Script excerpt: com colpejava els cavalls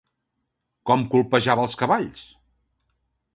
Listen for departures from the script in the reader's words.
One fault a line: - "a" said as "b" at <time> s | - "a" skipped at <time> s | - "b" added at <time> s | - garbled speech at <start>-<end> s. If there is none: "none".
none